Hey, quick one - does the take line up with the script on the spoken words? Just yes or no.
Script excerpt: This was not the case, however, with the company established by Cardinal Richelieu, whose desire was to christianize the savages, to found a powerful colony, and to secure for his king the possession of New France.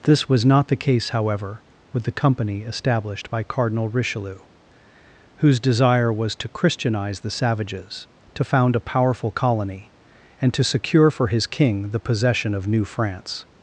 yes